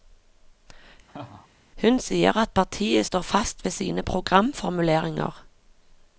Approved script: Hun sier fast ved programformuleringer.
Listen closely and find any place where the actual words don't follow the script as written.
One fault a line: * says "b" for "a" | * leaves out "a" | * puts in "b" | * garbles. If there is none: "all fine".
* puts in "at partiet står"
* puts in "sine"